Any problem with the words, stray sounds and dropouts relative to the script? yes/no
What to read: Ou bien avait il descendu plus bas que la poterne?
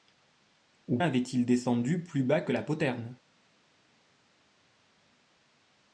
yes